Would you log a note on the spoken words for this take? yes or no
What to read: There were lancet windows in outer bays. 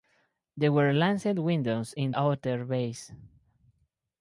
no